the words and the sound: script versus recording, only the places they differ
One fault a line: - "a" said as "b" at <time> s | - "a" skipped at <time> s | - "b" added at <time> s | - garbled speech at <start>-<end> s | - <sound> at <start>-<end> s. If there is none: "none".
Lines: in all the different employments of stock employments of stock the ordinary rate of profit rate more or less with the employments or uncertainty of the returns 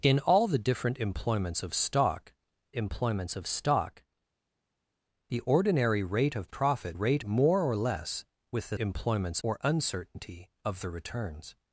none